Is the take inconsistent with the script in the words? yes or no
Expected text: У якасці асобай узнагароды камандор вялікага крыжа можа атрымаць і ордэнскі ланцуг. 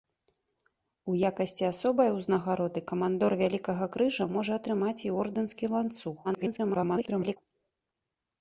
yes